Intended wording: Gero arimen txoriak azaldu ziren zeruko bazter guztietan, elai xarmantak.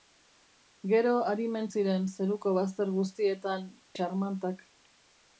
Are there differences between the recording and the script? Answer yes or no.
yes